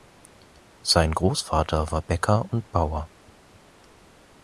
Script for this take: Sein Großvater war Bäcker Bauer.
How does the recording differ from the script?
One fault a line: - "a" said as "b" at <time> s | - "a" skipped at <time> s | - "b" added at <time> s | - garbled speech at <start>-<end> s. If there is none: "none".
- "und" added at 2.5 s